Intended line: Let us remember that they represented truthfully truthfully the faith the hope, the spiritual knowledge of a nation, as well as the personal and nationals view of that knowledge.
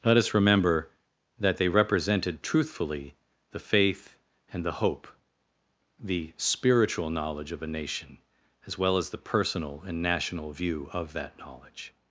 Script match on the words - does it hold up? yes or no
no